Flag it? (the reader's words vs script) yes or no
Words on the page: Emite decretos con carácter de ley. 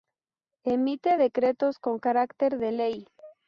no